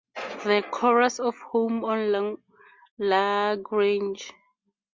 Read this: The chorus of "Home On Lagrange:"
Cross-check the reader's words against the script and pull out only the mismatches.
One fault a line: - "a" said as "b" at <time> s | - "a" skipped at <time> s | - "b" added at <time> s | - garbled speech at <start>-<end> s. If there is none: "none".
none